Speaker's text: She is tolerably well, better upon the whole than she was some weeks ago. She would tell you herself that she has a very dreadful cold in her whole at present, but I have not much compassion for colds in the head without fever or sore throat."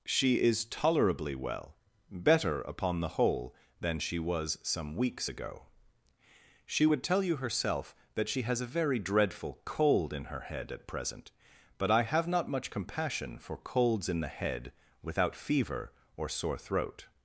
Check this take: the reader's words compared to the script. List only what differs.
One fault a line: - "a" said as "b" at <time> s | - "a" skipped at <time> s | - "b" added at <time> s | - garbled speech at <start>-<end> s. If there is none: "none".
- "whole" said as "head" at 10.4 s